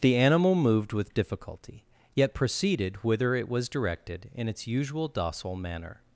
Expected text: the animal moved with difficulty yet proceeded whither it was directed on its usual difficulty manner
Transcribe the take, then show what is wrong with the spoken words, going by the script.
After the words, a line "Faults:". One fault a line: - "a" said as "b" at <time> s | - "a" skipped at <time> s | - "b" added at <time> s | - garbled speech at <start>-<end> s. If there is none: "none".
the animal moved with difficulty yet proceeded whither it was directed in its usual docile manner
Faults:
- "on" said as "in" at 4.3 s
- "difficulty" said as "docile" at 5.1 s